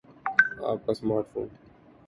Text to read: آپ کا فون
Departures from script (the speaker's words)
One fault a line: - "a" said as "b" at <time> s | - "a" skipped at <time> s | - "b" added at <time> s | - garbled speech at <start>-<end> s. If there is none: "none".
- "سمارٹ" added at 0.9 s